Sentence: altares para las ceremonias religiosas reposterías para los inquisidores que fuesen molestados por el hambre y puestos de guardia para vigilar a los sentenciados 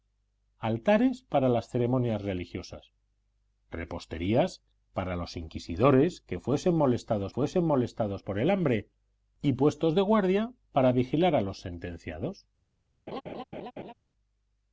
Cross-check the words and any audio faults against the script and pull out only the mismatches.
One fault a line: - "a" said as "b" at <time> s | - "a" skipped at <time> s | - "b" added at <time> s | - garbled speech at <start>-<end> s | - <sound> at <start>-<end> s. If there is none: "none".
- "fuesen molestados" added at 7.3 s
- laugh at 13.1-13.9 s